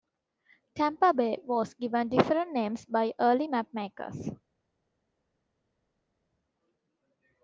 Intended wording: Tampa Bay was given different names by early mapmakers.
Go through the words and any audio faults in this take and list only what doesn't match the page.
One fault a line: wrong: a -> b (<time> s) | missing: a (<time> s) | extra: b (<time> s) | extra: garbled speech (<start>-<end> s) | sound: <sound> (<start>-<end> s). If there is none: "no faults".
no faults